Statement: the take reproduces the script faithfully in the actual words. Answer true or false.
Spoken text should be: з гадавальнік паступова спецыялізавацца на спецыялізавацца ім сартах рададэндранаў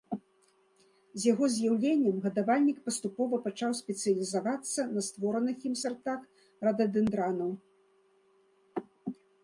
false